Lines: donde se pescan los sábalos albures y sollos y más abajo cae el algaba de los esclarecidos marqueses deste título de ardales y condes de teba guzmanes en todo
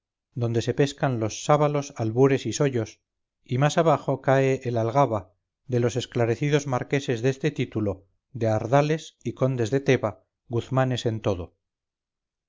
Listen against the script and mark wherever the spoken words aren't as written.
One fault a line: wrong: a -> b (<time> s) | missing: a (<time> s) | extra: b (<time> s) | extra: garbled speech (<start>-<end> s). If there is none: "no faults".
no faults